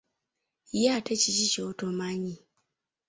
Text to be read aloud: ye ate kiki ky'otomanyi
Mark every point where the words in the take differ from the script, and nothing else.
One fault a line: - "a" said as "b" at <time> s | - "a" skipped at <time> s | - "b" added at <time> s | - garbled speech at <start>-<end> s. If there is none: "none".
none